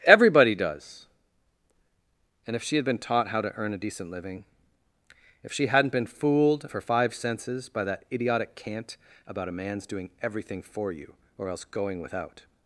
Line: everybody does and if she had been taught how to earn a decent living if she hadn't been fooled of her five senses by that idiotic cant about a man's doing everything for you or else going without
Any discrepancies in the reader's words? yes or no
no